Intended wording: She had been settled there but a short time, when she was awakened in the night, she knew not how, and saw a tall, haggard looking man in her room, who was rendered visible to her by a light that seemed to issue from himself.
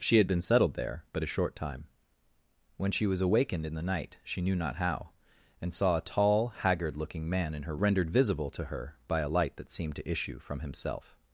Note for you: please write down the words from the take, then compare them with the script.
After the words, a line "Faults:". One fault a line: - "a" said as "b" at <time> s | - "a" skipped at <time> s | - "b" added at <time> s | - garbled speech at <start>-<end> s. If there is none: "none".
She had been settled there but a short time, when she was awakened in the night, she knew not how, and saw a tall, haggard looking man in her rendered visible to her by a light that seemed to issue from himself.
Faults:
- "room who was" skipped at 7.8 s